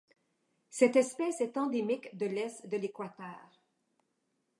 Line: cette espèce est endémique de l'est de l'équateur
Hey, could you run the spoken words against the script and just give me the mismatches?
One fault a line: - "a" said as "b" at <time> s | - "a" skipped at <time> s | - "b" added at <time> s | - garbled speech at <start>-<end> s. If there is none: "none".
none